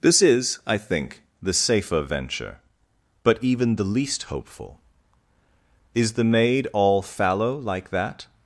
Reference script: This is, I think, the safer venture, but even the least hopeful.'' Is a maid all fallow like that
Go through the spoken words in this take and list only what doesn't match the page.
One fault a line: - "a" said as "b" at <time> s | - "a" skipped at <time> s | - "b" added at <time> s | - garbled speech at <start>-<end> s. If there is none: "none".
- "a" said as "the" at 6.1 s